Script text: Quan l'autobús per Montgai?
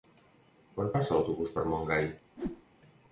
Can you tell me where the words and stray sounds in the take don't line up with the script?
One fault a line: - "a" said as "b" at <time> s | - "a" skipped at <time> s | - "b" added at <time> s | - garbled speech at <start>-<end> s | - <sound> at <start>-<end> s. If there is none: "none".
- "passa" added at 0.9 s
- whoosh at 2.4-2.6 s